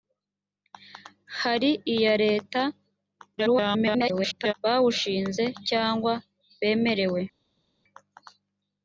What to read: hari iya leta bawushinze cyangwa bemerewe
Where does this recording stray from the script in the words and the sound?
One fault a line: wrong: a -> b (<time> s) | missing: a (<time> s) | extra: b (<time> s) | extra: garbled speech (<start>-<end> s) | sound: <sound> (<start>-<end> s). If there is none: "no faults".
extra: garbled speech (3.4-4.5 s)